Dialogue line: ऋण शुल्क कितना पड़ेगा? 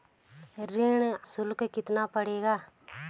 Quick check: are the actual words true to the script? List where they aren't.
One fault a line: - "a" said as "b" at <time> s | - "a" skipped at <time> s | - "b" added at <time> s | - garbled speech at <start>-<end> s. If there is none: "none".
none